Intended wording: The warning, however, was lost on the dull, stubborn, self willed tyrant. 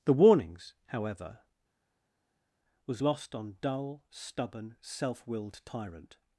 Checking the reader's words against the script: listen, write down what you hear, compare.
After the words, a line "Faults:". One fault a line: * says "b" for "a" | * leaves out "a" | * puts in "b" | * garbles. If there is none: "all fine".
The warnings, however, was lost on dull, stubborn, self willed tyrant.
Faults:
* says "warnings" for "warning"
* leaves out "the"